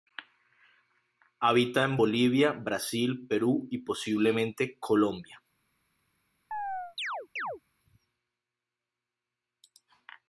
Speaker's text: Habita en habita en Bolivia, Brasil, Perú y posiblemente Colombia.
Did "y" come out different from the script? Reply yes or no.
no